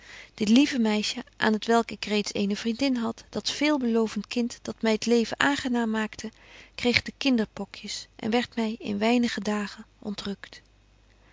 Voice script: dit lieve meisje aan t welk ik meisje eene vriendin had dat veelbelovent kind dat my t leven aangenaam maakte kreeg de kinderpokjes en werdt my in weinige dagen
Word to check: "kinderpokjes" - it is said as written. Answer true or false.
true